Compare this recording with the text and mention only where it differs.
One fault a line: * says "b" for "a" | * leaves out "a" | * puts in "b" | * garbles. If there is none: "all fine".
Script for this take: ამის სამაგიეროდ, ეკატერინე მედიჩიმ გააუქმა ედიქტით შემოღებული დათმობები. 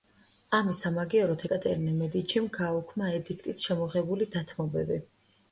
all fine